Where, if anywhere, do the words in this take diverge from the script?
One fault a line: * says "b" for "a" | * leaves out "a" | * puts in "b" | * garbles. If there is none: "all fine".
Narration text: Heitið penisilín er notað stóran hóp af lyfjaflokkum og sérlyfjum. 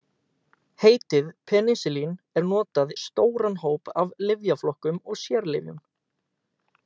all fine